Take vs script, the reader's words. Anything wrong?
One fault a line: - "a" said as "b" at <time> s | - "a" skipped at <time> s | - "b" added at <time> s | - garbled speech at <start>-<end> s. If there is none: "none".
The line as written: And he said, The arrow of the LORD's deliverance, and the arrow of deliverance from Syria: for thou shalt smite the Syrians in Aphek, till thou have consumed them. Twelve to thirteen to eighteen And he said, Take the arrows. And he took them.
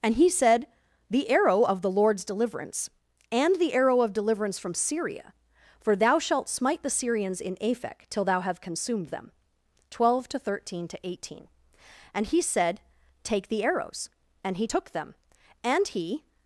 - "And he" added at 15.6 s